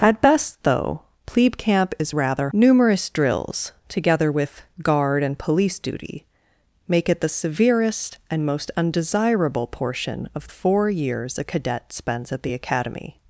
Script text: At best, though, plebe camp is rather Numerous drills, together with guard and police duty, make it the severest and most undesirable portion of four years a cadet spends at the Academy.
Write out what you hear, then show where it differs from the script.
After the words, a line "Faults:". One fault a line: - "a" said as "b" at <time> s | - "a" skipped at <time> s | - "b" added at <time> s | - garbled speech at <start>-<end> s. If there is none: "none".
At best, though, plebe camp is rather Numerous drills, together with guard and police duty, make it the severest and most undesirable portion of four years a cadet spends at the Academy.
Faults:
none